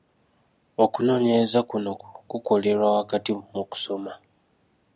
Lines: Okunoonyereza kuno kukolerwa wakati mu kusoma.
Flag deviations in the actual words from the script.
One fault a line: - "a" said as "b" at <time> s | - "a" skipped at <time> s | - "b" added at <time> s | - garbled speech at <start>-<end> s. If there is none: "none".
none